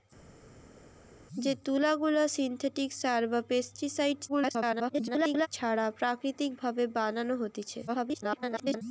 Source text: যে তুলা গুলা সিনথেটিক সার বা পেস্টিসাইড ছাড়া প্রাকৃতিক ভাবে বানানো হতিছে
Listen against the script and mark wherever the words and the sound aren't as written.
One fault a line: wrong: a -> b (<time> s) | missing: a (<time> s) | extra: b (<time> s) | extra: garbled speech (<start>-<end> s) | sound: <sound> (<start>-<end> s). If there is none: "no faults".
extra: garbled speech (4.3-5.5 s)
extra: garbled speech (7.9-8.8 s)